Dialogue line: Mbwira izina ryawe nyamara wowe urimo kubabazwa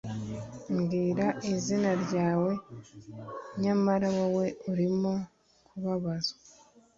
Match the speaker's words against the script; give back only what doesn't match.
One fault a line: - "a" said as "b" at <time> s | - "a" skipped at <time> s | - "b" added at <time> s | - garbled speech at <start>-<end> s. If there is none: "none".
none